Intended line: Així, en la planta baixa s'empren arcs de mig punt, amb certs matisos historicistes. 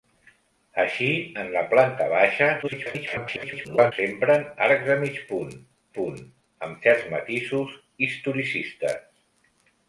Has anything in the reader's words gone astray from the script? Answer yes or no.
yes